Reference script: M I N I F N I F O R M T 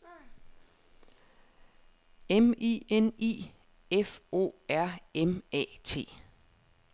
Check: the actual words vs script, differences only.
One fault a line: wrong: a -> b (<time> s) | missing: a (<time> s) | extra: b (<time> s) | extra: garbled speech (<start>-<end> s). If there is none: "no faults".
missing: N I F (4.2 s)
extra: A (5.5 s)